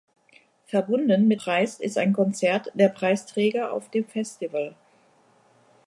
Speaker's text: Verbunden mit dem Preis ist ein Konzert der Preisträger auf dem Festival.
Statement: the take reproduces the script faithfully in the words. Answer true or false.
false